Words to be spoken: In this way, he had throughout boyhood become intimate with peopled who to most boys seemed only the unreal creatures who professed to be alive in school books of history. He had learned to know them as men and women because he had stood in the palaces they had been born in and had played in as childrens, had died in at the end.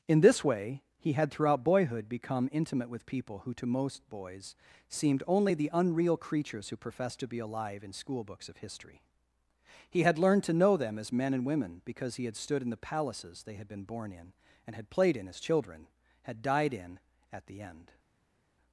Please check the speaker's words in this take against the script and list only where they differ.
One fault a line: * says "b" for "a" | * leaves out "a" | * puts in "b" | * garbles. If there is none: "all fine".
* says "people" for "peopled"
* says "children" for "childrens"